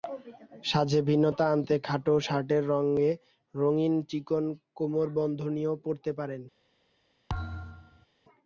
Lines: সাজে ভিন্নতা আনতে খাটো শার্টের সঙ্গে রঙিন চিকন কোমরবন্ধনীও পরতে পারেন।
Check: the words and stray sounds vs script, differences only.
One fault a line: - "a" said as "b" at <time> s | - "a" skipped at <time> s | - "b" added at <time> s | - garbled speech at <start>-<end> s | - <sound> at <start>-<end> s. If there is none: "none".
- thud at 7.3-8.1 s